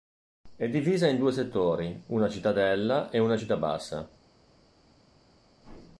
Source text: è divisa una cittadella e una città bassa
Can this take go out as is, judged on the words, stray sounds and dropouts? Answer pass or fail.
fail